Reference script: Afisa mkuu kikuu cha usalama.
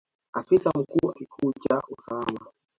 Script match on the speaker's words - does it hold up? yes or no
yes